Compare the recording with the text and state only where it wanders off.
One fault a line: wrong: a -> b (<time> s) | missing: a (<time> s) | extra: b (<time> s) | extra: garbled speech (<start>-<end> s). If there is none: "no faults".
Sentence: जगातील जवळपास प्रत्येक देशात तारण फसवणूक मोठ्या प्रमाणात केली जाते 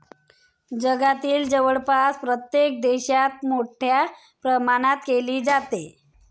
missing: तारण फसवणूक (3.4 s)